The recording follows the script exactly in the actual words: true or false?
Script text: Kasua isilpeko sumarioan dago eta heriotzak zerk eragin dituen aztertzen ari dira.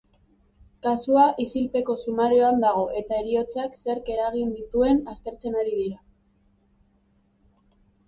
true